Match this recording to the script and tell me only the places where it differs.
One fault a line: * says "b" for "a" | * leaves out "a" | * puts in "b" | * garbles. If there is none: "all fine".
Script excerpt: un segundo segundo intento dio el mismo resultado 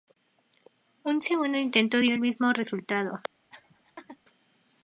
* leaves out "segundo"